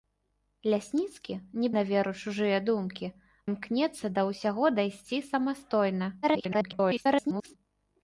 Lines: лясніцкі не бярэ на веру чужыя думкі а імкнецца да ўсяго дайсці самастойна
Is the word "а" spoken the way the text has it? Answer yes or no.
no